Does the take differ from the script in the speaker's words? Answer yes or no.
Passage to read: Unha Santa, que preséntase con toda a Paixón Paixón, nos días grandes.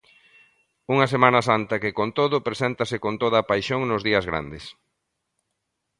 yes